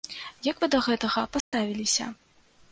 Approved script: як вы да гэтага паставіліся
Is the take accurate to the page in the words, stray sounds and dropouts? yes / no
no